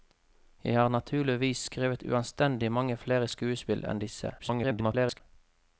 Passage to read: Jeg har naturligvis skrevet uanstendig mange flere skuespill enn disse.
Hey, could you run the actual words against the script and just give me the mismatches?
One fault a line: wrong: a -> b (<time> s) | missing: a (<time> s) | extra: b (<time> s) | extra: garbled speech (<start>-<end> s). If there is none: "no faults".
extra: garbled speech (4.4-5.2 s)